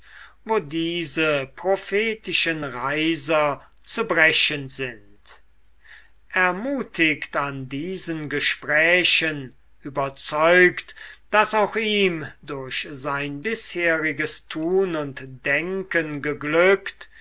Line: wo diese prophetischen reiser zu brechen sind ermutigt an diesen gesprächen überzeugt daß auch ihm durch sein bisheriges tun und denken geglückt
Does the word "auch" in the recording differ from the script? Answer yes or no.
no